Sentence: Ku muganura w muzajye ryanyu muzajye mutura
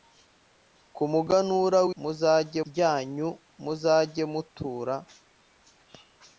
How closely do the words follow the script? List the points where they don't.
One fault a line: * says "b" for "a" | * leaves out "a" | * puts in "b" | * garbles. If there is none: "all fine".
all fine